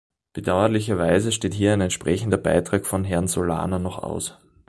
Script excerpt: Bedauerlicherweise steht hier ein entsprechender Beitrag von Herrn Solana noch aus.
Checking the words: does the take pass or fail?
pass